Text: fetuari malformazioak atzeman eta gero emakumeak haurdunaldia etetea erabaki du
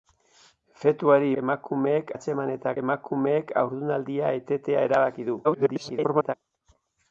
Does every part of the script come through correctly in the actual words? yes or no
no